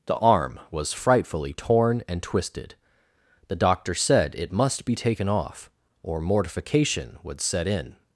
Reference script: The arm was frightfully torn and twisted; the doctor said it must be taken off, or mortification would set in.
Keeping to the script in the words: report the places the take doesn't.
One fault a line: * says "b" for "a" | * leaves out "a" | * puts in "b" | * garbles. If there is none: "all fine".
all fine